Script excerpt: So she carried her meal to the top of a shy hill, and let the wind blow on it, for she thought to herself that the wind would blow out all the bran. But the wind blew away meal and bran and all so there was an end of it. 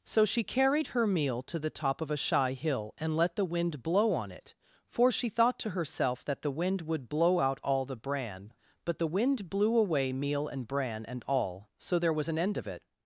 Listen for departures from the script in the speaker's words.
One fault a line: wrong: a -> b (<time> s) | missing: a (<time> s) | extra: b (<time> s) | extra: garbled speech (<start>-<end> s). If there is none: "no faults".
no faults